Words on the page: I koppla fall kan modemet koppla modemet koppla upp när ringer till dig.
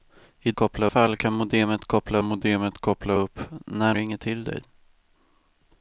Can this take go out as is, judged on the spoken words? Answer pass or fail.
pass